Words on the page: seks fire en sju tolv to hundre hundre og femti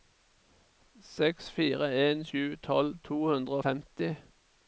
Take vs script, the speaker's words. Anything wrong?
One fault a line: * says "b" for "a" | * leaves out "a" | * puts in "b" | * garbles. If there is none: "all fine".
* leaves out "hundre"